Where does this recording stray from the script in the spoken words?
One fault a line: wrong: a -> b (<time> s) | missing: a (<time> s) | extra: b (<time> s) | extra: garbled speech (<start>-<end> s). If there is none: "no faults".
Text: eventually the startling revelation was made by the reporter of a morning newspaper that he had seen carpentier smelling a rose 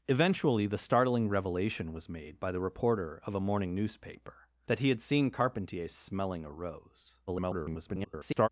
extra: garbled speech (7.3-8.5 s)